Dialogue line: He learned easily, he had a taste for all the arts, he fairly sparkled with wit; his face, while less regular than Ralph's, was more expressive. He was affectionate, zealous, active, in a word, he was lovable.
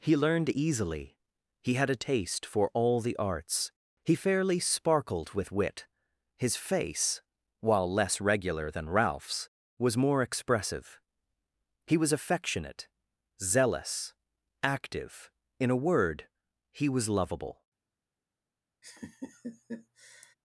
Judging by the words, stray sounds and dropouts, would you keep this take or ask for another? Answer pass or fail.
fail